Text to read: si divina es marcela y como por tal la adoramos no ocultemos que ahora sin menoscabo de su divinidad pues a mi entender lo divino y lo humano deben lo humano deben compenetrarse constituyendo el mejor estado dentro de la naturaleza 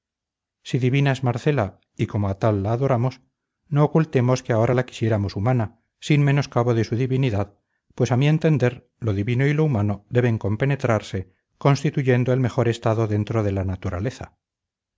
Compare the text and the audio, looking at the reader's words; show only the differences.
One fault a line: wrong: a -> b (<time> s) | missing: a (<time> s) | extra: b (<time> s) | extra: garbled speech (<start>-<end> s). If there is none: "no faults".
wrong: por -> a (2.3 s)
extra: la quisiéramos humana (4.7 s)
missing: lo humano deben (10.4 s)